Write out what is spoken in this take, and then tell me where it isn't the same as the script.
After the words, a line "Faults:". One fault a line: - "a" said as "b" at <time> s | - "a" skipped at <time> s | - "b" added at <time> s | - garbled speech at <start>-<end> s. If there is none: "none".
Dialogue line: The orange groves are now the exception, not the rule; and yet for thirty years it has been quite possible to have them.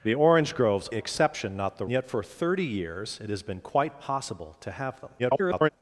The orange groves exception, not the yet for thirty years it has been quite possible to have them. [garbled]
Faults:
- "are now the" skipped at 0.9 s
- "rule and" skipped at 1.9 s
- garbled speech at 5.2-5.7 s